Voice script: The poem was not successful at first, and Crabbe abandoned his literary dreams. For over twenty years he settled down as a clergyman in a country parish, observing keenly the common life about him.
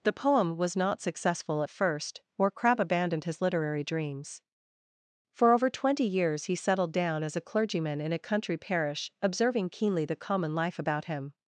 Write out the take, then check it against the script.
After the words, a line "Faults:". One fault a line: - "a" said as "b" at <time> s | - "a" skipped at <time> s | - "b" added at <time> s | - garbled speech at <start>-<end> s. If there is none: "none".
The poem was not successful at first, or Crabbe abandoned his literary dreams. For over twenty years he settled down as a clergyman in a country parish, observing keenly the common life about him.
Faults:
- "and" said as "or" at 2.4 s